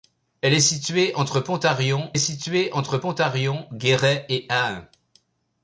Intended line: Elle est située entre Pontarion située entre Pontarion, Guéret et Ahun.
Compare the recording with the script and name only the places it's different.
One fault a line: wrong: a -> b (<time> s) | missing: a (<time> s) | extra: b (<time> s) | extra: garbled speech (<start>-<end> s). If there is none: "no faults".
no faults